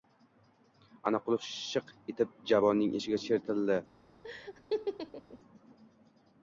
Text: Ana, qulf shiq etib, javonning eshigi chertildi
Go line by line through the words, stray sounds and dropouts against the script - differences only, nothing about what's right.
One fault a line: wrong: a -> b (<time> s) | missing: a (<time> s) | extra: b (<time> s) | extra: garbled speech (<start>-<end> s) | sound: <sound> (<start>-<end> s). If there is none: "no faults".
sound: laugh (4.2-5.4 s)